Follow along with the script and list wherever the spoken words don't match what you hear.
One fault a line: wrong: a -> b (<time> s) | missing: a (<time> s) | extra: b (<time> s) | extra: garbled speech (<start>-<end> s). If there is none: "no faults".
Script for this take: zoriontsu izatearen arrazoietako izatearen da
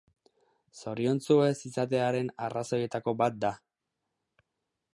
extra: ez (1.5 s)
wrong: izatearen -> bat (3.2 s)